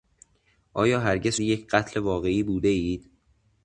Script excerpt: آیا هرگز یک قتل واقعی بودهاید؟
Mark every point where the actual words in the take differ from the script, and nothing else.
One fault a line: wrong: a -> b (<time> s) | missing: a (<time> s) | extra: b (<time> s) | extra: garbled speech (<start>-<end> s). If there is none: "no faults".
no faults